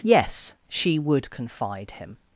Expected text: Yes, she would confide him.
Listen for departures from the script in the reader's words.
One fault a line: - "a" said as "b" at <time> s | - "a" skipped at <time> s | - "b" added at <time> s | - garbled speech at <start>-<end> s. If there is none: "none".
none